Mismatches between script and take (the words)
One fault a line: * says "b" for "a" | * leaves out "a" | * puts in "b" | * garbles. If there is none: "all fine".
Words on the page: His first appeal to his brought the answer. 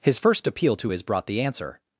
all fine